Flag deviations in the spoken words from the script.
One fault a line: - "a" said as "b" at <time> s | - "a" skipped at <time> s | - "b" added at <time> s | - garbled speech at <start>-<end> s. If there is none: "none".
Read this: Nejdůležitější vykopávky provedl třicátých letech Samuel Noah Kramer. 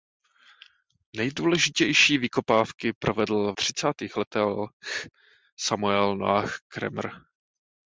none